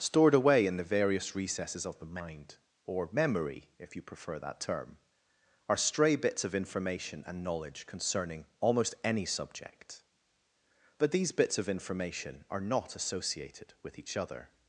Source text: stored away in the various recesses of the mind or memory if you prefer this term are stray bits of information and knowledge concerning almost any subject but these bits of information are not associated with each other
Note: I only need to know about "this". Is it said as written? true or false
false